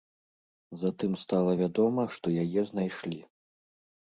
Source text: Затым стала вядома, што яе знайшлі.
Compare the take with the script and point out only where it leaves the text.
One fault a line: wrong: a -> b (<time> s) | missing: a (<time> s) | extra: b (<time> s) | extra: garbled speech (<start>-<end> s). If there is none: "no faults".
no faults